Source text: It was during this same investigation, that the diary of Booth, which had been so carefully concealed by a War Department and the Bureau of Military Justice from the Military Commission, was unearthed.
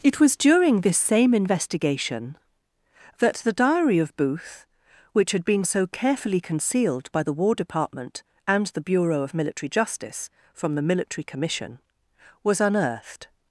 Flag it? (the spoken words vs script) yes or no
yes